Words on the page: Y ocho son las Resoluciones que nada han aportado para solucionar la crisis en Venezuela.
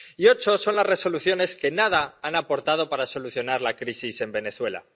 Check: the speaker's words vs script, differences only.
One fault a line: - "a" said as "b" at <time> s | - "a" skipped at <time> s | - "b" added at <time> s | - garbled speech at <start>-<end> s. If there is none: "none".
none